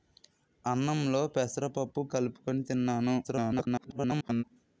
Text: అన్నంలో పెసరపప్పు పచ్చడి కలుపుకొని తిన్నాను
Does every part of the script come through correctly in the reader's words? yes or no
no